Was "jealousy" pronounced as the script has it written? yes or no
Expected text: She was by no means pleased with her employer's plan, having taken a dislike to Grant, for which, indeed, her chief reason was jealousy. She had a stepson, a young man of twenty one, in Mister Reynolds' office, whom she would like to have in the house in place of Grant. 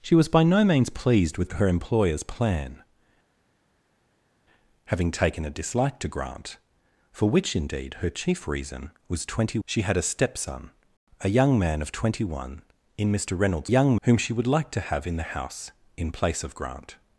no